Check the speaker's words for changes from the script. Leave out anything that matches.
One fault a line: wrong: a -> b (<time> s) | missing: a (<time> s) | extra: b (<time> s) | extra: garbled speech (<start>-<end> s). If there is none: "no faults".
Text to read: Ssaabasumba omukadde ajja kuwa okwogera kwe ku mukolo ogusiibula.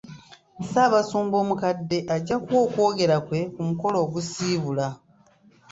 no faults